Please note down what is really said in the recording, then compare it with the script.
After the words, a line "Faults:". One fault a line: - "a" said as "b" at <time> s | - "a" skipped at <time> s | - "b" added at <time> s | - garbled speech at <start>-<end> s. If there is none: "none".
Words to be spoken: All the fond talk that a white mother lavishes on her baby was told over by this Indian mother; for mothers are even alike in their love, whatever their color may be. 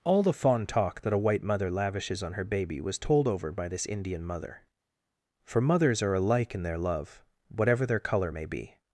All the fond talk that a white mother lavishes on her baby was told over by this Indian mother; for mothers are alike in their love, whatever their color may be.
Faults:
- "even" skipped at 6.1 s